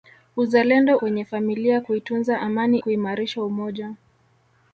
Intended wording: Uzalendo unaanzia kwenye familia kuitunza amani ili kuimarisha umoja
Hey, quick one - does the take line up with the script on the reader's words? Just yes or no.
no